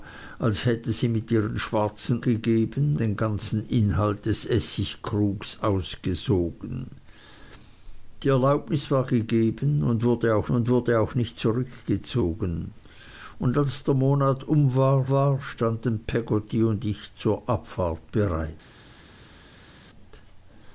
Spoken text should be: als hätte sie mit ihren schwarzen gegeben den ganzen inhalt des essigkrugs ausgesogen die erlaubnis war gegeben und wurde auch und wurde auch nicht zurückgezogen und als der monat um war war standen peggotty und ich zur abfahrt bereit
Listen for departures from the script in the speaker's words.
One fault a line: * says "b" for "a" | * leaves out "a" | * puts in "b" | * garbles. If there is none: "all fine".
all fine